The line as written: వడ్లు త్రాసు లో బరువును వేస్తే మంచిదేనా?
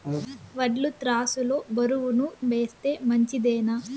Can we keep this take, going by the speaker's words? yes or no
yes